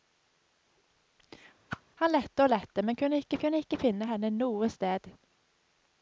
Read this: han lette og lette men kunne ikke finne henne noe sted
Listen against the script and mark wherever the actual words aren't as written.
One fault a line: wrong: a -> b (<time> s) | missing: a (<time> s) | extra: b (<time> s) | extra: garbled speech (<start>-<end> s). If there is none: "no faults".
extra: kunne ikke (3.4 s)